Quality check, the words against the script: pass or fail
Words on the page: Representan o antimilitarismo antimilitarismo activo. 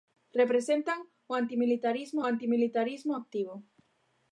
pass